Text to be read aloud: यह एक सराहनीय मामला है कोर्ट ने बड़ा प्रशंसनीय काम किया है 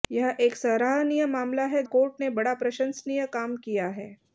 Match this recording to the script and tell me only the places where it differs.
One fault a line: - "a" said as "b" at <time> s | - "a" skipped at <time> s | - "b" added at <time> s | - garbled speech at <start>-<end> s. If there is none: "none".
none